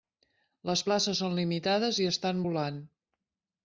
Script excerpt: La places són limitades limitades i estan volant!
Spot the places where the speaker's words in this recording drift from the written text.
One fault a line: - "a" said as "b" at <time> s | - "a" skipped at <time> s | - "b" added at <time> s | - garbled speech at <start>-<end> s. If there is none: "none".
- "La" said as "Les" at 0.7 s
- "limitades" skipped at 2.0 s